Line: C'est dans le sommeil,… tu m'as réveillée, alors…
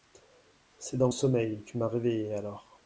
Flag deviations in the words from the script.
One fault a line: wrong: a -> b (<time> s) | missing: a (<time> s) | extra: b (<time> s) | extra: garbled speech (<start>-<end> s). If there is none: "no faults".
no faults